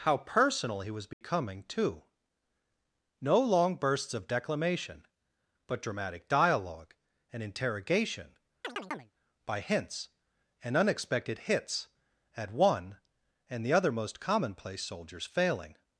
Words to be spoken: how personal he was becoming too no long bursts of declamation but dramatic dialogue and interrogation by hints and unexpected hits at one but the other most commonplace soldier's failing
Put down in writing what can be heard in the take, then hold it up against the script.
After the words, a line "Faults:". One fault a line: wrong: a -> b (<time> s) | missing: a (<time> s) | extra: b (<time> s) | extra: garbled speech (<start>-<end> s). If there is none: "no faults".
how personal he was becoming too no long bursts of declamation but dramatic dialogue and interrogation by hints and unexpected hits at one and the other most commonplace soldier's failing
Faults:
wrong: but -> and (13.5 s)